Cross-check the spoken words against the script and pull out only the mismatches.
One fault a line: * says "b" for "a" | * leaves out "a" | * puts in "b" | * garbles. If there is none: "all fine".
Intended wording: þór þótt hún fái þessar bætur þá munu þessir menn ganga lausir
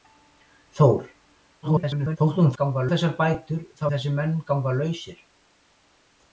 * garbles
* says "ganga" for "fái"
* leaves out "munu"